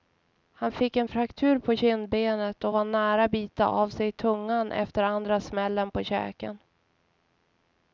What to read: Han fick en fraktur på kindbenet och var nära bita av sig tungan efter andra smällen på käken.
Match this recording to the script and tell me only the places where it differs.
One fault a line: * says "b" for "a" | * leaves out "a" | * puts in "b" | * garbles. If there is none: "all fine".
all fine